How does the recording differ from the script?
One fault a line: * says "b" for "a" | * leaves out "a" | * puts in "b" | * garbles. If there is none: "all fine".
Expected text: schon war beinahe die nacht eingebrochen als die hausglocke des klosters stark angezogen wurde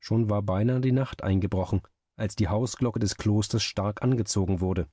all fine